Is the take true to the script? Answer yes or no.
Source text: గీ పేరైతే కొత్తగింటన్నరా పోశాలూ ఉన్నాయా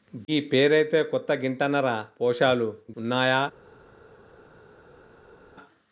yes